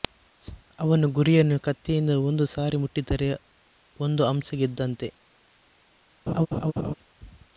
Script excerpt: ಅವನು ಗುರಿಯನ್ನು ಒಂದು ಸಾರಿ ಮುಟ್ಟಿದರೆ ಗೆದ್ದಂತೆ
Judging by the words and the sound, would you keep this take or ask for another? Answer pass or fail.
fail